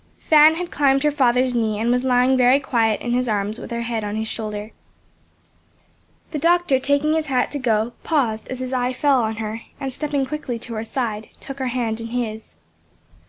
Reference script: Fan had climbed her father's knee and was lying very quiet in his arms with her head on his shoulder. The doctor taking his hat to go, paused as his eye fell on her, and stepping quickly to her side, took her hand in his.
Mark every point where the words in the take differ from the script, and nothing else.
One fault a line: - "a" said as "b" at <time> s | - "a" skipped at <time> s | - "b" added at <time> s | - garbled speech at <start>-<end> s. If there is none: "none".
none